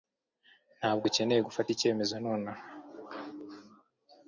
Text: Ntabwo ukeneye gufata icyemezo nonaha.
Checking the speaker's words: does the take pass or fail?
pass